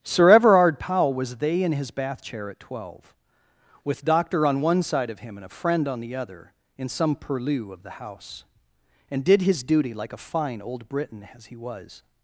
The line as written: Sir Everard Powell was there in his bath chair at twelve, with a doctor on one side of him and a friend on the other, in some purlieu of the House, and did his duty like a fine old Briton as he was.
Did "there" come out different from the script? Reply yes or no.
yes